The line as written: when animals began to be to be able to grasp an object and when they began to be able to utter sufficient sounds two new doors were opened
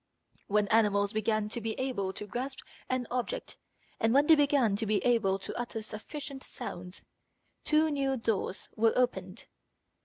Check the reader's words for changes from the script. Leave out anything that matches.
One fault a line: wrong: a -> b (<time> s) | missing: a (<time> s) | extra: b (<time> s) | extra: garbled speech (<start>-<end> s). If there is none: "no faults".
missing: to be (1.7 s)